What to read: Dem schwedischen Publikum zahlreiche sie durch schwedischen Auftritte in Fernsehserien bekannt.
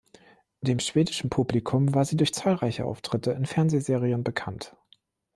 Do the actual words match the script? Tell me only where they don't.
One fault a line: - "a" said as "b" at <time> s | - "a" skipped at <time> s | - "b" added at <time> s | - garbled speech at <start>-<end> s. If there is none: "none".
- "zahlreiche" said as "war" at 1.9 s
- "schwedischen" said as "zahlreiche" at 2.3 s